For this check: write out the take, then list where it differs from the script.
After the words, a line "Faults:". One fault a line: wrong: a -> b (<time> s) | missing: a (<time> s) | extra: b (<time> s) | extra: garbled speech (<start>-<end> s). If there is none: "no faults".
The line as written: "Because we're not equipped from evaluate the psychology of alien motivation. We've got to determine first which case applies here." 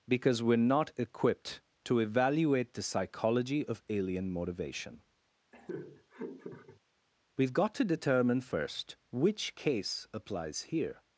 "Because we're not equipped to evaluate the psychology of alien motivation. We've got to determine first which case applies here."
Faults:
wrong: from -> to (1.9 s)